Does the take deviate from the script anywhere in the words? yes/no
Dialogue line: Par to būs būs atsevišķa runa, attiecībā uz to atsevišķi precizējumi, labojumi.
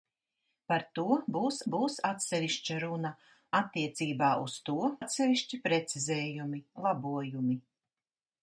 no